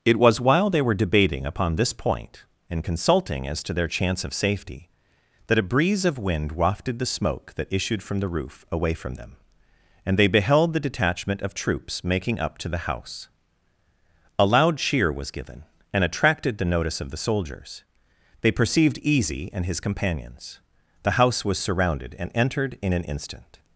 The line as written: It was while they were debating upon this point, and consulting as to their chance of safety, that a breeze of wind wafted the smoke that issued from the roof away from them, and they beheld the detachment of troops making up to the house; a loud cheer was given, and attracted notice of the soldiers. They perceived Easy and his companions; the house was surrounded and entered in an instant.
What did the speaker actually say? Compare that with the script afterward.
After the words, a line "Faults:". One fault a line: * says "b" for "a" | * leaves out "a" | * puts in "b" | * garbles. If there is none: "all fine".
It was while they were debating upon this point, and consulting as to their chance of safety, that a breeze of wind wafted the smoke that issued from the roof away from them, and they beheld the detachment of troops making up to the house; a loud cheer was given, and attracted the notice of the soldiers. They perceived Easy and his companions; the house was surrounded and entered in an instant.
Faults:
* puts in "the"